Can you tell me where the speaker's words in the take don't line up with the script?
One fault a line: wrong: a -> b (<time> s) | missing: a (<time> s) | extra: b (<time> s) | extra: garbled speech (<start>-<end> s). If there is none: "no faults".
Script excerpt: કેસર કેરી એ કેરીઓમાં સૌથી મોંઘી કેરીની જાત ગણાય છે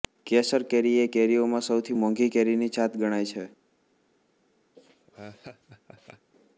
no faults